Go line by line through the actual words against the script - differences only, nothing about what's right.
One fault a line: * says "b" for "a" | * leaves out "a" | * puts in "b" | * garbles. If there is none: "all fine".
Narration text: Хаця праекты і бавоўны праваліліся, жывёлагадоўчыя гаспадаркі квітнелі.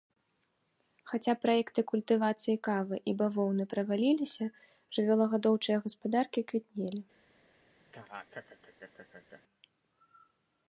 * puts in "культывацыі кавы"